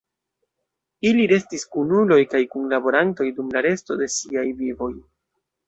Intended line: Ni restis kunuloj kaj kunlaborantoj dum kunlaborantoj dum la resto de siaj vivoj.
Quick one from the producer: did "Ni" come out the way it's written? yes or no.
no